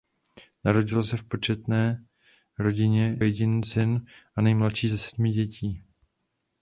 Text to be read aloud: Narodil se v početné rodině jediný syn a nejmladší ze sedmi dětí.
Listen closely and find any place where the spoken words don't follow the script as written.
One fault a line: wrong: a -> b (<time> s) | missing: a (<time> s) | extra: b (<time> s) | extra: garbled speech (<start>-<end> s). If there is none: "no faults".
no faults